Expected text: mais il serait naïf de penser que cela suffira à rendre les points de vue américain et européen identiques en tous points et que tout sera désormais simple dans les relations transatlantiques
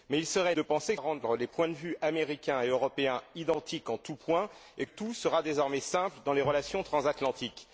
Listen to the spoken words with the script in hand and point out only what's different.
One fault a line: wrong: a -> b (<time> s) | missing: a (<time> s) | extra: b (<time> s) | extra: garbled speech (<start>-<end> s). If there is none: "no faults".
missing: naïf (0.6 s)
missing: cela suffira (1.0 s)
missing: que (4.9 s)